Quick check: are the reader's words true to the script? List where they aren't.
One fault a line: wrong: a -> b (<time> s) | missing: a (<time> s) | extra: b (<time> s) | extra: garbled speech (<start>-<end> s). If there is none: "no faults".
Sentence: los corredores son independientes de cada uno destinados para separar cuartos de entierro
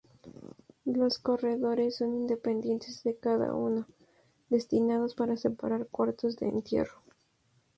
no faults